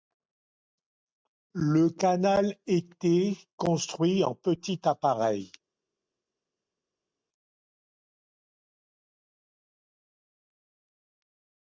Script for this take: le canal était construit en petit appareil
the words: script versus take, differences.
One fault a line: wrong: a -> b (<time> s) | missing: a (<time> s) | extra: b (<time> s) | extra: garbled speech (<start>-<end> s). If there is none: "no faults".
no faults